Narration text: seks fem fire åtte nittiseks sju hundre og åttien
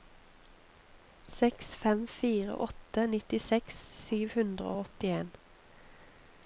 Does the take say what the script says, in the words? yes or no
yes